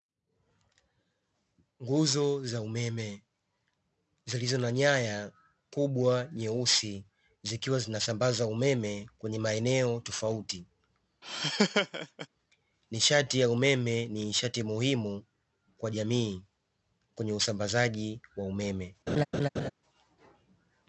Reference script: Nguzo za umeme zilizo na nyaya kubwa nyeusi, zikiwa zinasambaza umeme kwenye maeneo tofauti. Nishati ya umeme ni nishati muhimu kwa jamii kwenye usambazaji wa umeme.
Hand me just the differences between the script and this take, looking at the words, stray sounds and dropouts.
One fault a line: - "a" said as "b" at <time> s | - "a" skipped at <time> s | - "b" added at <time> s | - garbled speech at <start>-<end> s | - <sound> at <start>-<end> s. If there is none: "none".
- laugh at 11.2-12.3 s
- laugh at 19.1-19.7 s